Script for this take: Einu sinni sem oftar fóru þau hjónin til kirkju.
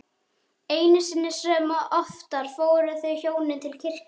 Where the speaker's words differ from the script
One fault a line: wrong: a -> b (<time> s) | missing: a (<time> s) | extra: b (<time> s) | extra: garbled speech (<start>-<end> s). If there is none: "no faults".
no faults